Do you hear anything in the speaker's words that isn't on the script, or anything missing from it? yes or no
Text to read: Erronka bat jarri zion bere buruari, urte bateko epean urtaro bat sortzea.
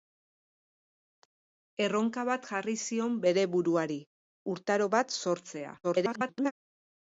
yes